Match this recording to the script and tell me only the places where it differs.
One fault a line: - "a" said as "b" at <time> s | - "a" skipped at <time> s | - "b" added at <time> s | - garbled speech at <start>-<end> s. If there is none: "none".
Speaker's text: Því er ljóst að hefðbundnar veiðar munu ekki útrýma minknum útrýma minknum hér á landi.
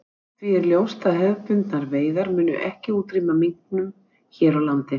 - "útrýma minknum" skipped at 3.9 s